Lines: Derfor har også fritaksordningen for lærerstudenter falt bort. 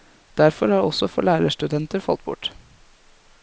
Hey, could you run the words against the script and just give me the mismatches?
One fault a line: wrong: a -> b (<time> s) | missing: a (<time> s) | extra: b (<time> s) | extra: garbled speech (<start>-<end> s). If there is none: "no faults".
missing: fritaksordningen (1.1 s)